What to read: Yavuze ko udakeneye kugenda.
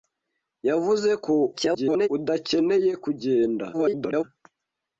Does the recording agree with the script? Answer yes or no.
no